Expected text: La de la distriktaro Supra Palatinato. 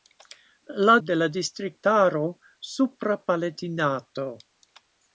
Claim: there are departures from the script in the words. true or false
false